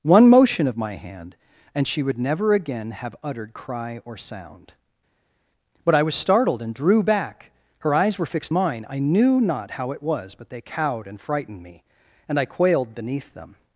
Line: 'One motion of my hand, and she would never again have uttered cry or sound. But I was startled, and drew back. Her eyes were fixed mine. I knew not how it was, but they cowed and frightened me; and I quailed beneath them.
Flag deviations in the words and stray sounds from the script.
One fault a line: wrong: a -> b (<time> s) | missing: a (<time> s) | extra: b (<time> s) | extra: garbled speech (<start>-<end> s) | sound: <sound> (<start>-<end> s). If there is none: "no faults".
no faults